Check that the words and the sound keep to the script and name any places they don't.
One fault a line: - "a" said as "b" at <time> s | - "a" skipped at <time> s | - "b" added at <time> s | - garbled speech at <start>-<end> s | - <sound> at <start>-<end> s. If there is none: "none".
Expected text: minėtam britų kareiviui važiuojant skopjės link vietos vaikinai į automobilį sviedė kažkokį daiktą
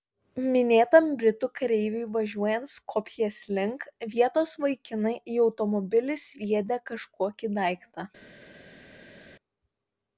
none